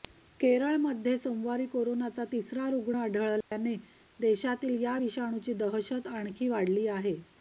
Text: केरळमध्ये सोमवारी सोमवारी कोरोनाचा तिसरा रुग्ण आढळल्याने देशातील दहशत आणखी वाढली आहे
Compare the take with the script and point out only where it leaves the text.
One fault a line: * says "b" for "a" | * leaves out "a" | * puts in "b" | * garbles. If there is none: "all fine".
* leaves out "सोमवारी"
* puts in "या विषाणूची"